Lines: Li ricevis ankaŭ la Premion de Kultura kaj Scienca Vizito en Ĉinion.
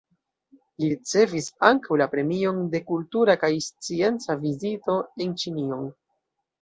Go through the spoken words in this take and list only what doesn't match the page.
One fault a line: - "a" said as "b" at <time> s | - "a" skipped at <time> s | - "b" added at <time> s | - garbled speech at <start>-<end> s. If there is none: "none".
none